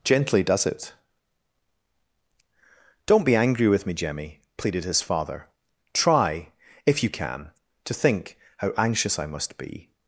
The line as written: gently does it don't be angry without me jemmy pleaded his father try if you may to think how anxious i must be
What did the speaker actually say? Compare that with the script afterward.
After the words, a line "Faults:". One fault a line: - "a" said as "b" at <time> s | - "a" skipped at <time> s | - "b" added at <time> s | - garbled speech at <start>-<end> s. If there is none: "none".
gently does it don't be angry with me jemmy pleaded his father try if you can to think how anxious i must be
Faults:
- "without" said as "with" at 3.7 s
- "may" said as "can" at 7.1 s